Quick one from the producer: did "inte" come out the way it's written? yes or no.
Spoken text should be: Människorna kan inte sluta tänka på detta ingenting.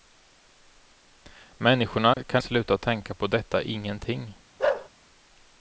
no